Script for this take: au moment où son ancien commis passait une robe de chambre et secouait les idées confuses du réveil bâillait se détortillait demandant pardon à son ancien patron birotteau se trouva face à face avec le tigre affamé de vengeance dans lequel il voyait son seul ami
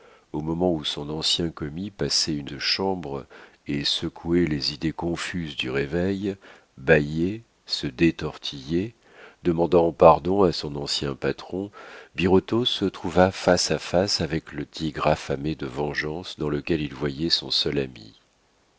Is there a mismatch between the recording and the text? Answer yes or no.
yes